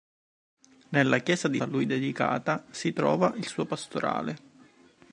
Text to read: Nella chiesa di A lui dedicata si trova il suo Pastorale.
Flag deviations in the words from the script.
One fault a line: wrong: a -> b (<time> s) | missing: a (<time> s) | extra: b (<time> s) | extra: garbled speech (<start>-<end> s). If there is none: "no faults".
no faults